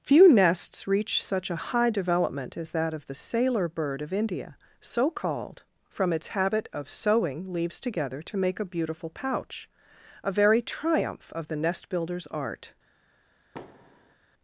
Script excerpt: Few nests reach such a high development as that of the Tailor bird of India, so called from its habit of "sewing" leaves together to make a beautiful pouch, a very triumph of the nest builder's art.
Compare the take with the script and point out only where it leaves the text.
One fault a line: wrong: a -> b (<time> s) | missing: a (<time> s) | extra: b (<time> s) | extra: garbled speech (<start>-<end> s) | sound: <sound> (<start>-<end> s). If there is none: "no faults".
wrong: Tailor -> Sailor (3.1 s)
sound: thud (13.5-14.2 s)